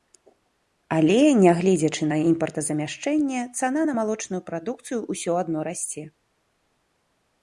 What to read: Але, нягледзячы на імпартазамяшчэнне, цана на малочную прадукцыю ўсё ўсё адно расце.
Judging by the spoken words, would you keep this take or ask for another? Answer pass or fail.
fail